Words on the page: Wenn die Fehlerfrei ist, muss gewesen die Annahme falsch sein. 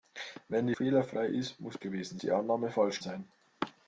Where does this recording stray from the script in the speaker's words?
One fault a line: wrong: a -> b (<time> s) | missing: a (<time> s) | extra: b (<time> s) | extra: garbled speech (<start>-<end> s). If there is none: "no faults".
no faults